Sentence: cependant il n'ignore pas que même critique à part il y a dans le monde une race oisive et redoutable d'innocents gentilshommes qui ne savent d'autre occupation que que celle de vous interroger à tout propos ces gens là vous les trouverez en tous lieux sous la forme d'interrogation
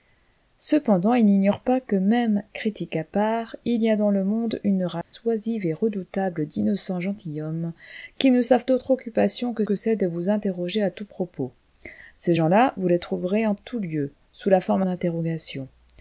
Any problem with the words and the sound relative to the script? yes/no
yes